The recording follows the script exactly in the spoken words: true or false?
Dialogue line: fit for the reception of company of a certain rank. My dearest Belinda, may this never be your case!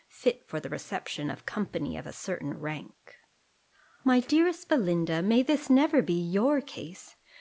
true